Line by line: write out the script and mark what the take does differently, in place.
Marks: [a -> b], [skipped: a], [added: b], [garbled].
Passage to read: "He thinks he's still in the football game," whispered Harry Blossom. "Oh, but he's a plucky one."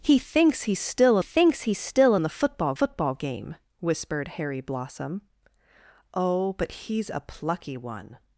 "He thinks he's still [added: thinks he's still] in the football [added: football] game," whispered Harry Blossom. "Oh, but he's a plucky one."